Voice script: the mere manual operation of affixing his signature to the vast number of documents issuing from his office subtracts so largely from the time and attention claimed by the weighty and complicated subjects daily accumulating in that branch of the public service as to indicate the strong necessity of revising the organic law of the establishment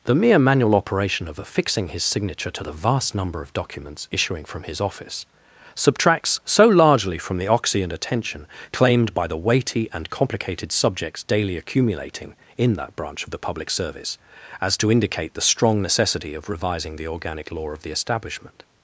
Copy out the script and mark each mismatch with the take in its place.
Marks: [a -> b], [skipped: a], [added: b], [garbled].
the mere manual operation of affixing his signature to the vast number of documents issuing from his office subtracts so largely from the [time -> oxy] and attention claimed by the weighty and complicated subjects daily accumulating in that branch of the public service as to indicate the strong necessity of revising the organic law of the establishment